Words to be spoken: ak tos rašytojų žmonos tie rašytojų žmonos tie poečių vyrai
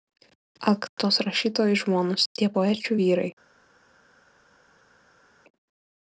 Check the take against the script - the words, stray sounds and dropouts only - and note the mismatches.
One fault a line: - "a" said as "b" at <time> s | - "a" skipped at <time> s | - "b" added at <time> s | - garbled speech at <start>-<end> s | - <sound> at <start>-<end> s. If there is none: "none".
- "rašytojų žmonos tie" skipped at 2.5 s